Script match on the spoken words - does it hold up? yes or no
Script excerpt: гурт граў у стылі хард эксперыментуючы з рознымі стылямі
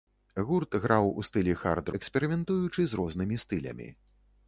yes